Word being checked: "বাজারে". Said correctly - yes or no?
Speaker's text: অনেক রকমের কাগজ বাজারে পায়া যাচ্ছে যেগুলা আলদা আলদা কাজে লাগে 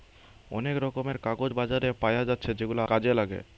yes